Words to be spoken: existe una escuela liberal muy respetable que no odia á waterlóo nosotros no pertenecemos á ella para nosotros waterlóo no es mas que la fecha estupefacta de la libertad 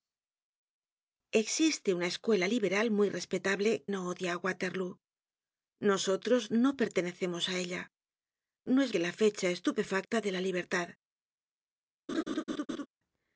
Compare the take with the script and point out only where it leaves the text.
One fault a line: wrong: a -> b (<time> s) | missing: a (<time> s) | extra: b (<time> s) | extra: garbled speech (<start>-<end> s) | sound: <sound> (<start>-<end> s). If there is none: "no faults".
missing: que (3.7 s)
missing: para nosotros waterlóo (7.8 s)
missing: mas (8.9 s)
sound: laugh (12.1-12.9 s)